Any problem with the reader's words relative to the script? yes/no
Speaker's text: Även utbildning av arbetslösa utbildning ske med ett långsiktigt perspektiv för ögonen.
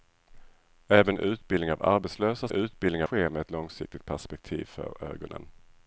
no